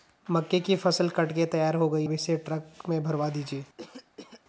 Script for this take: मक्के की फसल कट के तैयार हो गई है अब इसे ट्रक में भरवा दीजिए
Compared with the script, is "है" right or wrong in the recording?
wrong